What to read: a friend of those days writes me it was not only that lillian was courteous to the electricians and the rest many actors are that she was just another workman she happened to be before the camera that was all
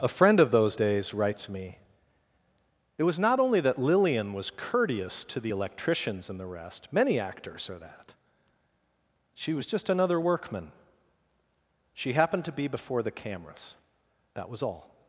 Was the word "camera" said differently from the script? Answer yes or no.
yes